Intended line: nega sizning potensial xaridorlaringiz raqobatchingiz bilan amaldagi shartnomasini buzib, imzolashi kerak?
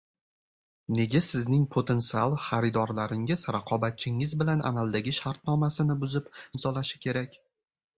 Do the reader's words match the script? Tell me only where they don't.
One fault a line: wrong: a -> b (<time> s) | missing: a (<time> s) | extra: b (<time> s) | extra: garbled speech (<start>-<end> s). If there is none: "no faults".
no faults